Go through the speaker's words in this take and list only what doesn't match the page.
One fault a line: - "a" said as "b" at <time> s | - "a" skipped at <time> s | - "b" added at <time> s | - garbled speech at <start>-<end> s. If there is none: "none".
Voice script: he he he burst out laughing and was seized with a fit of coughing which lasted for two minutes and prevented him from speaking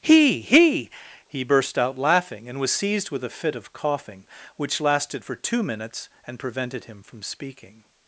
none